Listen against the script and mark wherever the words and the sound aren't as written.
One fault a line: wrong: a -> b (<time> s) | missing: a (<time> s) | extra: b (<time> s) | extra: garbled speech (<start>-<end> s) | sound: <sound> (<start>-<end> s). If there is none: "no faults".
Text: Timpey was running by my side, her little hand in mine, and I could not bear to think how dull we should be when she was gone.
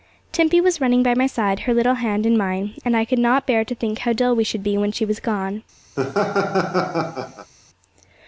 sound: laugh (6.0-7.5 s)